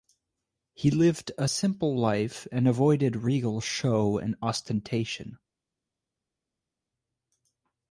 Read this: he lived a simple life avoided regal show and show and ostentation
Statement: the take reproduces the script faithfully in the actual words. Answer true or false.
false